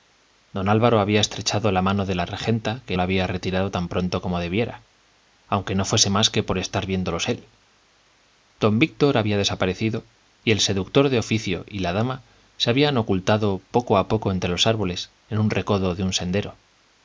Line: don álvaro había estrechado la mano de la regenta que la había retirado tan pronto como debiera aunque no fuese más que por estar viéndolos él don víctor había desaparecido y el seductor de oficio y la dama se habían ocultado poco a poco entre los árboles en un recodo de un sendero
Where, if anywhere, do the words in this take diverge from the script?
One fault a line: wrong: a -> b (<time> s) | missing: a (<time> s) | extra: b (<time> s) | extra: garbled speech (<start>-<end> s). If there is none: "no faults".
no faults